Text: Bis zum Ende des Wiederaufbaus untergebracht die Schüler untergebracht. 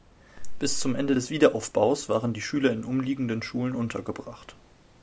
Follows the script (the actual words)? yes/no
no